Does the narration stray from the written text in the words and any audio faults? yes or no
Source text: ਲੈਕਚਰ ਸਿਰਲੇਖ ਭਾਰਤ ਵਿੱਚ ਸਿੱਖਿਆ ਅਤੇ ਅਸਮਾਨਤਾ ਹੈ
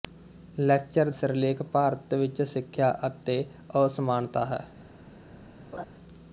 yes